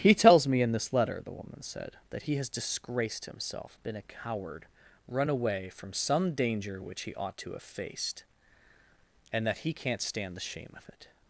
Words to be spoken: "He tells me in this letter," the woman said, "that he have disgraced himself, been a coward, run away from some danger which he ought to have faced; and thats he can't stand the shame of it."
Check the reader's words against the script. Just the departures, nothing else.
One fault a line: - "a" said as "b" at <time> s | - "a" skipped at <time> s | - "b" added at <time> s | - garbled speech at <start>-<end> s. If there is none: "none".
- "have" said as "has" at 2.4 s
- "thats" said as "that" at 9.5 s